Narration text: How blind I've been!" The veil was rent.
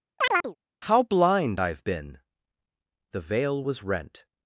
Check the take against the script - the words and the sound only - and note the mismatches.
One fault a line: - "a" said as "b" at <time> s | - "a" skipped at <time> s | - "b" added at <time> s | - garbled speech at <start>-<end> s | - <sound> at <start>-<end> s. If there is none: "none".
- chirp at 0.2-0.6 s